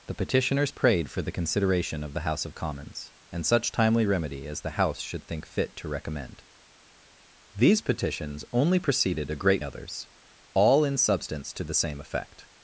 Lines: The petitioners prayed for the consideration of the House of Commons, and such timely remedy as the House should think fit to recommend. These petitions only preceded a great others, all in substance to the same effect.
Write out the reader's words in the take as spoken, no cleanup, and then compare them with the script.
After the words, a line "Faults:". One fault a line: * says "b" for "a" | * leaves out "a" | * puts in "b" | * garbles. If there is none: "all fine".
The petitioners prayed for the consideration of the House of Commons, and such timely remedy as the House should think fit to recommend. These petitions only preceded a great others, all in substance to the same effect.
Faults:
all fine